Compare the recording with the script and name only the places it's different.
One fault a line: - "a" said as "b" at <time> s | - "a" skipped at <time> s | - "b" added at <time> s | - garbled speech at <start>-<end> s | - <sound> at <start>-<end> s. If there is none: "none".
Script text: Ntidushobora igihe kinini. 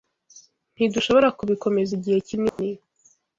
- "kubikomeza" added at 1.4 s
- dropout at 2.5-2.6 s